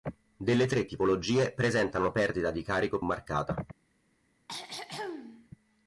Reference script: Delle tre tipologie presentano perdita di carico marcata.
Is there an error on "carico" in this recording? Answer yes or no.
no